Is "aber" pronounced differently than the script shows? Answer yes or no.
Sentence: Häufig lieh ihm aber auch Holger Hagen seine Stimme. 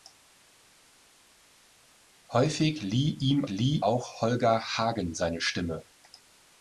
yes